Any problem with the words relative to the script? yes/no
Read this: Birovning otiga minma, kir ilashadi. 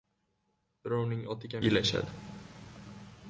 yes